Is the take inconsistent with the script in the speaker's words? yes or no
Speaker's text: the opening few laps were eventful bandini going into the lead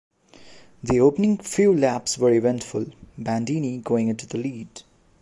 no